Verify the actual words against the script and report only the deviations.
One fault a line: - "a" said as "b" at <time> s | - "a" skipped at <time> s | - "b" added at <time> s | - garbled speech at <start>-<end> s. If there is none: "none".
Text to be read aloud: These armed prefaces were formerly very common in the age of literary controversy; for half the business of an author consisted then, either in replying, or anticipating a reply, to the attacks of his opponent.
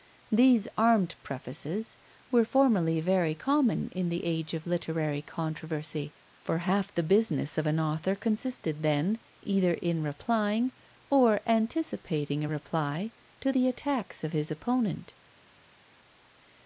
none